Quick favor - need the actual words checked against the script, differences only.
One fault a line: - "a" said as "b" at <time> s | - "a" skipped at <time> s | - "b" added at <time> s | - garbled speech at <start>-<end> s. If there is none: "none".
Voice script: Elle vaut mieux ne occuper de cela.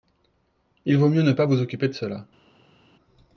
- "Elle" said as "Il" at 0.8 s
- "pas vous" added at 1.3 s